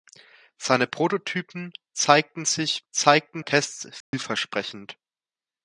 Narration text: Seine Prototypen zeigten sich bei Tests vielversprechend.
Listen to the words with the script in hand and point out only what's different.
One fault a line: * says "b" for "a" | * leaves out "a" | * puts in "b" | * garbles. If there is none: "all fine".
* says "zeigten" for "bei"